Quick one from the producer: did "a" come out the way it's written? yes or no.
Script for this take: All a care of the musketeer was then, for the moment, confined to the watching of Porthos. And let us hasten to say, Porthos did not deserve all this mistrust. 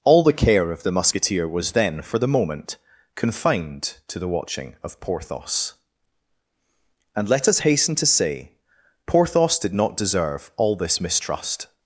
no